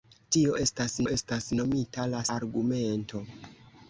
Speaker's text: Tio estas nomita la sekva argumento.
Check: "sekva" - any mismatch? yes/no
yes